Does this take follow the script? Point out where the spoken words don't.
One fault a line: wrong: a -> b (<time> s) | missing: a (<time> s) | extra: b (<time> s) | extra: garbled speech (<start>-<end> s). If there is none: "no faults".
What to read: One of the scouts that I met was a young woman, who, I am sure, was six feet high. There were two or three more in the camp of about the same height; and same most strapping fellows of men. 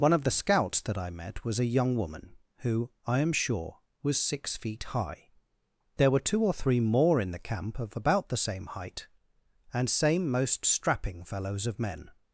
no faults